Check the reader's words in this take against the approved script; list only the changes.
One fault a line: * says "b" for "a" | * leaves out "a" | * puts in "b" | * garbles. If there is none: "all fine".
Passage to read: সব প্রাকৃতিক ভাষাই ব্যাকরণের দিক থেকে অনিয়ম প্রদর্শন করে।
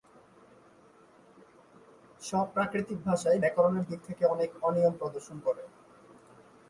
* puts in "অনেক"